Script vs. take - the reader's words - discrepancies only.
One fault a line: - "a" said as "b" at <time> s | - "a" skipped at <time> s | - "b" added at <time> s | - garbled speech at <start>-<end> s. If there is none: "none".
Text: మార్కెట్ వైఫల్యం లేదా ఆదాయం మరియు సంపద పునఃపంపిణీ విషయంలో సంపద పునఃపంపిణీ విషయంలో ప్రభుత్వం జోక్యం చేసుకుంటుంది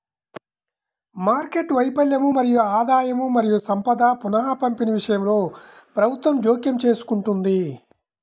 - "లేదా" said as "మరియు" at 2.3 s
- "సంపద పునఃపంపిణీ విషయంలో" skipped at 5.4 s